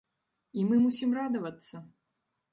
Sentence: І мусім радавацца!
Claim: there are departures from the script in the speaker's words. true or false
true